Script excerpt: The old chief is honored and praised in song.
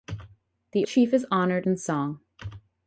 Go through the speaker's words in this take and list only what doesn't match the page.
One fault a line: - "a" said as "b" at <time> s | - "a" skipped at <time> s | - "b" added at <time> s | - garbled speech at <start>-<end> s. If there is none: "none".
- "old" skipped at 0.9 s
- "and praised" skipped at 1.7 s